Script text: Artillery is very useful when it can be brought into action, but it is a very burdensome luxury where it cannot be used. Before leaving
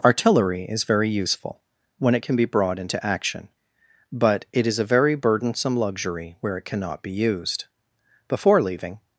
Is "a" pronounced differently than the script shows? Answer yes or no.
no